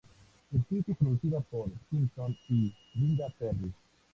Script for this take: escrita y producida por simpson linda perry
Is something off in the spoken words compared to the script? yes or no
yes